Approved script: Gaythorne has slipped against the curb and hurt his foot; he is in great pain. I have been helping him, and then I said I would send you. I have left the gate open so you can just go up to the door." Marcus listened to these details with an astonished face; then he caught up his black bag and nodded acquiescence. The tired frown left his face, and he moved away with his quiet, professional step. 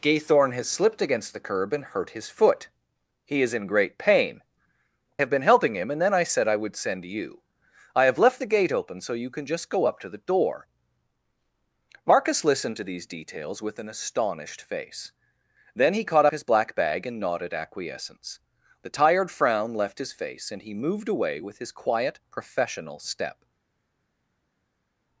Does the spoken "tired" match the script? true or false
true